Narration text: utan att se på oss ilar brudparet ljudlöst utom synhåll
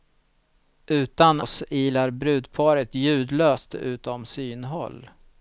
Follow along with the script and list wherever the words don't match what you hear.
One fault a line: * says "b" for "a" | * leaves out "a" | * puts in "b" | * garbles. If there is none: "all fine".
* leaves out "att se på"